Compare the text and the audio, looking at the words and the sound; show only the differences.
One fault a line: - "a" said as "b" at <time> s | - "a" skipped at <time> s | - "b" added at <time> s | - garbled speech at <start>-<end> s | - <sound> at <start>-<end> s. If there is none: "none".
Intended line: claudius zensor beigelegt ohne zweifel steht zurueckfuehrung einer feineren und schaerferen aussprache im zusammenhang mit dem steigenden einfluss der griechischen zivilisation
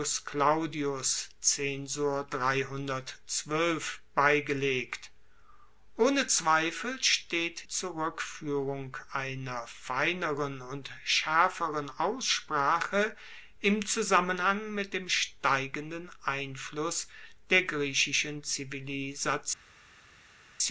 none